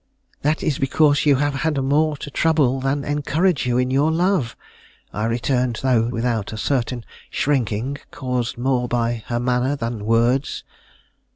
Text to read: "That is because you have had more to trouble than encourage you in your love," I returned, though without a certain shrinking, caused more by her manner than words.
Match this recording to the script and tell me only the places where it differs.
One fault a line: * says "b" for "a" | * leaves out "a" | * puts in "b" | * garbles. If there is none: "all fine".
all fine